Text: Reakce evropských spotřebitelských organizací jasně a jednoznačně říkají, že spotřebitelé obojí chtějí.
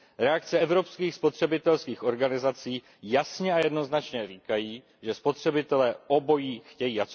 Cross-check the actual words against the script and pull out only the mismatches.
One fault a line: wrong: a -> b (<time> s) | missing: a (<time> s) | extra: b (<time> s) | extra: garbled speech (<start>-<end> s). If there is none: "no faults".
no faults